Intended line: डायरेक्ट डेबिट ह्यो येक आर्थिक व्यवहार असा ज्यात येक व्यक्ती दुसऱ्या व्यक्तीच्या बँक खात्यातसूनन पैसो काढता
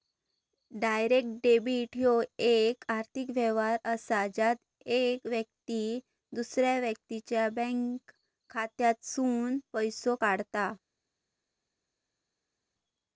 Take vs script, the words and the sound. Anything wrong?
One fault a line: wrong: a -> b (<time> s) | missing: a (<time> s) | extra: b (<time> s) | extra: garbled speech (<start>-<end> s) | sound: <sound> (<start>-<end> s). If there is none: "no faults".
no faults